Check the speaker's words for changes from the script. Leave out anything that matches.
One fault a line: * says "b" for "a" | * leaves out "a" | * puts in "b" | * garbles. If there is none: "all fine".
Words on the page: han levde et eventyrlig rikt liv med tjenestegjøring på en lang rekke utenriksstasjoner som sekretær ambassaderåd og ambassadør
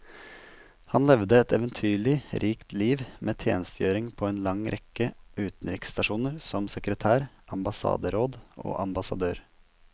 all fine